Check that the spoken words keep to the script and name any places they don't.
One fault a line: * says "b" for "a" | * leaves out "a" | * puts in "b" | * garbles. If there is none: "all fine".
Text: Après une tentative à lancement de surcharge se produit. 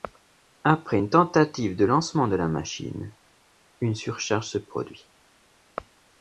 * says "de" for "à"
* puts in "la machine une"